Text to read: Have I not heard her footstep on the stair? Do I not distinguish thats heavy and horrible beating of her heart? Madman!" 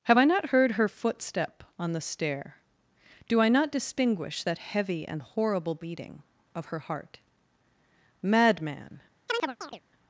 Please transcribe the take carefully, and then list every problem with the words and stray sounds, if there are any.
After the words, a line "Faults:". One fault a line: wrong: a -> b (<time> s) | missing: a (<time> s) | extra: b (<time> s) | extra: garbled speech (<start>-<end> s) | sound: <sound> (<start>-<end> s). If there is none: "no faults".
Have I not heard her footstep on the stair? Do I not distinguish that heavy and horrible beating of her heart? Madman!"
Faults:
wrong: thats -> that (4.4 s)
sound: chirp (9.3-9.8 s)